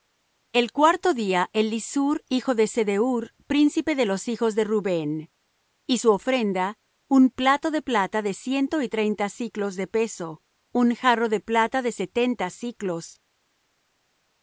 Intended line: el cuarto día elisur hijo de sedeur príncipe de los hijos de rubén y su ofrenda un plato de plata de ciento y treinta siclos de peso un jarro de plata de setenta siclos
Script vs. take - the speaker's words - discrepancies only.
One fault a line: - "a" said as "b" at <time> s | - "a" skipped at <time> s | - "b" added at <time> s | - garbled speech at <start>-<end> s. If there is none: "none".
none